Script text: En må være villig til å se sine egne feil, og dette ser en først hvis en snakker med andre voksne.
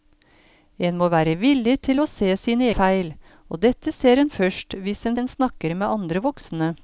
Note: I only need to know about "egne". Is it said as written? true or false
false